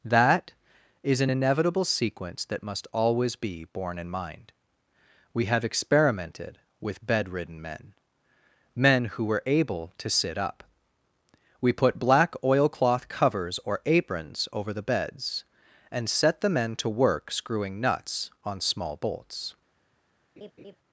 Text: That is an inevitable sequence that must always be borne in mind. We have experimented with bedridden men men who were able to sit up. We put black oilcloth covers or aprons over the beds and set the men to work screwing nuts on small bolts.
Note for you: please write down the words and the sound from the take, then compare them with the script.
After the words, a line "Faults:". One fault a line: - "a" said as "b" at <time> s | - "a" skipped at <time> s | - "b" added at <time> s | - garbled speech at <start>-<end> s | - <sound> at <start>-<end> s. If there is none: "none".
That is an inevitable sequence that must always be borne in mind. We have experimented with bedridden men men who were able to sit up. We put black oilcloth covers or aprons over the beds and set the men to work screwing nuts on small bolts.
Faults:
- laugh at 20.4-20.8 s